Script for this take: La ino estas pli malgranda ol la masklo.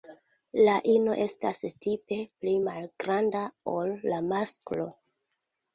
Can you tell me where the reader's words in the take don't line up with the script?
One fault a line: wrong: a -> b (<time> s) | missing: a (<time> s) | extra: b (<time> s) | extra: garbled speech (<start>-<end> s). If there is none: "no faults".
extra: tipe (1.9 s)